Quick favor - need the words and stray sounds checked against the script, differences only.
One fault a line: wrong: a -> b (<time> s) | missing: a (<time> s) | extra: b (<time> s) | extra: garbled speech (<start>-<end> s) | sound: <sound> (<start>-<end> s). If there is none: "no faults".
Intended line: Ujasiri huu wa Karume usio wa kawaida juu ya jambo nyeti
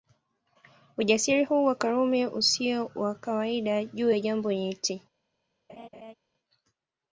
sound: laugh (5.7-6.1 s)